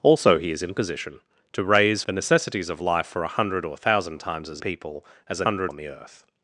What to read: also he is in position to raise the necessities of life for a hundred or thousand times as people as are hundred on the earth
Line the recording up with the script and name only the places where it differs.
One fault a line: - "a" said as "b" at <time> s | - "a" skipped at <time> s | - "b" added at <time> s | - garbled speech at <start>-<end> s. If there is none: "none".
none